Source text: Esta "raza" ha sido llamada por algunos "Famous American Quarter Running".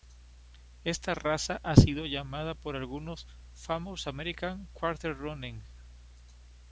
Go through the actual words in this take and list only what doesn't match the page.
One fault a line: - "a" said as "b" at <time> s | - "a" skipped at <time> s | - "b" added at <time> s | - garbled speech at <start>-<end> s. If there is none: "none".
none